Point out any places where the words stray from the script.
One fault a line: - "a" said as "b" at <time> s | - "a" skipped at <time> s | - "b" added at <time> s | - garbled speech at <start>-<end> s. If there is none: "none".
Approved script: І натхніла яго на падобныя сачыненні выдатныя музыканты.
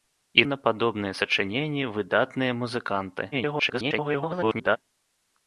- "натхніла яго" skipped at 0.5 s
- garbled speech at 3.3-4.8 s